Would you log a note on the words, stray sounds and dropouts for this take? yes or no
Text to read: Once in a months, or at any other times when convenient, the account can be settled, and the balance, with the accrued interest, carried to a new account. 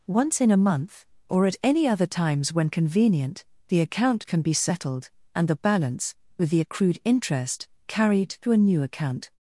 yes